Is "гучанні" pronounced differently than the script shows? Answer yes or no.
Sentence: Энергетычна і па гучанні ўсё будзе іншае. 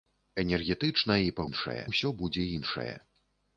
yes